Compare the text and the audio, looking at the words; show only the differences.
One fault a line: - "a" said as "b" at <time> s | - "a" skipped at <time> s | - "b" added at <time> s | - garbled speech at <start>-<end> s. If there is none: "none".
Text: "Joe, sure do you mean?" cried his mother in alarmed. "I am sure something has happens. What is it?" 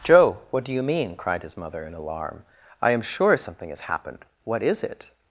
- "sure" said as "what" at 0.5 s
- "alarmed" said as "alarm" at 1.9 s
- "happens" said as "happened" at 3.8 s